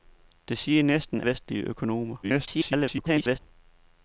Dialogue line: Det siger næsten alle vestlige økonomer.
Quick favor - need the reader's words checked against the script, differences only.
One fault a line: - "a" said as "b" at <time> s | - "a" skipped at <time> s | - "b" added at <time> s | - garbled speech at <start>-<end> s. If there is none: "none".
- "alle" skipped at 1.2 s
- garbled speech at 2.2-3.4 s